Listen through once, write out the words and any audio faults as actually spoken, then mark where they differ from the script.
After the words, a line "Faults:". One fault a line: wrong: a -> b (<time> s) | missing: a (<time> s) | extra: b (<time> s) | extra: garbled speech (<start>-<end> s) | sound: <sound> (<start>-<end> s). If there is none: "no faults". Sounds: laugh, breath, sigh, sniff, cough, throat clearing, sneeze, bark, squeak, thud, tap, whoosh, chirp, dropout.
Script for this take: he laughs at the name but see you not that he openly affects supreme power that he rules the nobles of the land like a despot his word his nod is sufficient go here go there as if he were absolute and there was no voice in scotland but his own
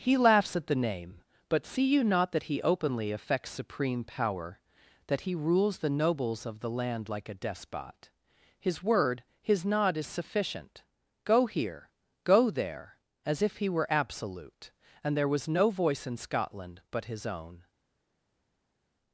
he laughs at the name but see you not that he openly affects supreme power that he rules the nobles of the land like a despot his word his nod is sufficient go here go there as if he were absolute and there was no voice in scotland but his own
Faults:
no faults